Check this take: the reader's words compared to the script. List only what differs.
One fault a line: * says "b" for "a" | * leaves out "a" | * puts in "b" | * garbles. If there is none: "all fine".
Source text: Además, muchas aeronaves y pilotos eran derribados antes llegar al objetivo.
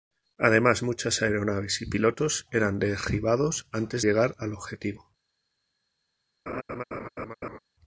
all fine